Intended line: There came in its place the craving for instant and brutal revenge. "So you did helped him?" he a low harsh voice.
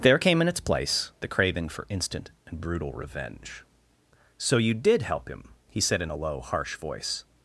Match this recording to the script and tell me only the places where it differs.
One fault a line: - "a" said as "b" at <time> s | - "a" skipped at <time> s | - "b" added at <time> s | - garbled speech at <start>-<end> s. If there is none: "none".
- "helped" said as "help" at 5.0 s
- "said in" added at 5.8 s